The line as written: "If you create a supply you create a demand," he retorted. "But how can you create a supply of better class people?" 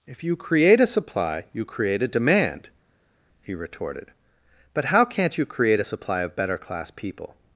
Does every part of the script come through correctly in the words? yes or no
no